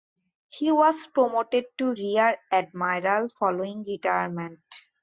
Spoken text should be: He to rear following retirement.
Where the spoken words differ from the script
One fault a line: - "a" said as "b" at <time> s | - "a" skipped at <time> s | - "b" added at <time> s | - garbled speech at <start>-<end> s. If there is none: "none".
- "was promoted" added at 0.7 s
- "admiral" added at 2.5 s